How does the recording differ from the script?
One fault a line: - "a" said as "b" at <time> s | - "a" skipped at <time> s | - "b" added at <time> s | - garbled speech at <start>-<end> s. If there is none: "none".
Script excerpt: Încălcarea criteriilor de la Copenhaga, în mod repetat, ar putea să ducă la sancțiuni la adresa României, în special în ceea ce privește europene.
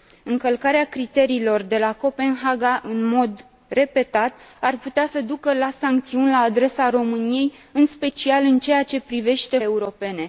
none